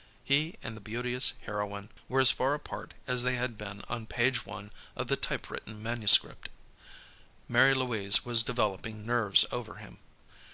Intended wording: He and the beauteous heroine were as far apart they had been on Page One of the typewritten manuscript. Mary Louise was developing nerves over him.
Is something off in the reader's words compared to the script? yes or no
yes